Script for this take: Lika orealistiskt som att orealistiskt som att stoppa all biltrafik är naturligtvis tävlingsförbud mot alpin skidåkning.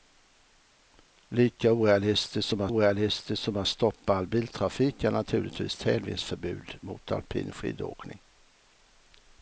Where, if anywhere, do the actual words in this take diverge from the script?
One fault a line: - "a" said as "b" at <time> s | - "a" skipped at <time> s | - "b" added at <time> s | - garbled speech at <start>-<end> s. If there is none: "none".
none